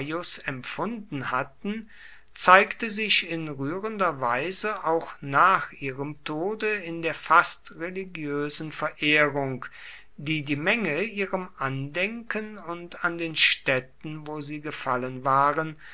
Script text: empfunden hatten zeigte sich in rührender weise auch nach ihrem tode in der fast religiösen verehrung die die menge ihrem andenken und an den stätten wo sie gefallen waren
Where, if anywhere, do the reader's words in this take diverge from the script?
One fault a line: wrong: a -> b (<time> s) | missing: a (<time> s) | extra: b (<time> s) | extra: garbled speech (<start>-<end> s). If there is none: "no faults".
no faults